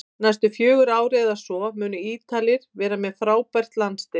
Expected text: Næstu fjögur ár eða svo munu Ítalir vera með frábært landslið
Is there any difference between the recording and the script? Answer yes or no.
no